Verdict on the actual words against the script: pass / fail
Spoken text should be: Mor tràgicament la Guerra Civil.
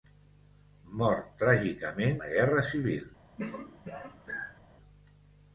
pass